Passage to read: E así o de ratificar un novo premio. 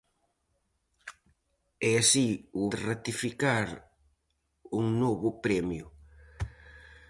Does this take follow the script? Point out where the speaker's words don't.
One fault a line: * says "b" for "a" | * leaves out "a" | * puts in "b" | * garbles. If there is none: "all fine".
all fine